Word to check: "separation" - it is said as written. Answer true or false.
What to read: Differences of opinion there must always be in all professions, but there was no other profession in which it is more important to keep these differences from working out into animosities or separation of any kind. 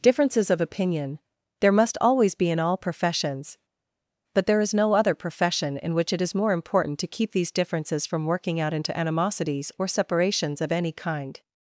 false